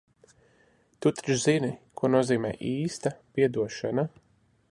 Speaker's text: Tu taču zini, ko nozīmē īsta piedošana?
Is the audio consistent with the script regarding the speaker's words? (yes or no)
yes